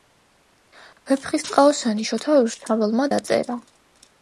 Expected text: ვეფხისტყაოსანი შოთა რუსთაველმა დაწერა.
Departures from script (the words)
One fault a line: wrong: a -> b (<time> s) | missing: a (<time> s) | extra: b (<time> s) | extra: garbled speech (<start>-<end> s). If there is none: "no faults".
no faults